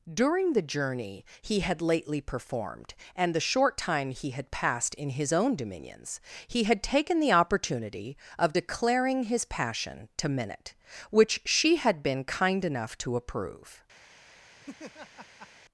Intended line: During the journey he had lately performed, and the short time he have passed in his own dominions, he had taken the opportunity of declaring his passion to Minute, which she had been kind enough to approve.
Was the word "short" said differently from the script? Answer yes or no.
no